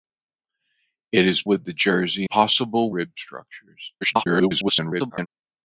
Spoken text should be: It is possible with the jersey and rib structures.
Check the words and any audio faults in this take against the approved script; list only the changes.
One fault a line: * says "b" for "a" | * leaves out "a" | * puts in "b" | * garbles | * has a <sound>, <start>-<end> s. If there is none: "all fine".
* leaves out "possible"
* says "possible" for "and"
* garbles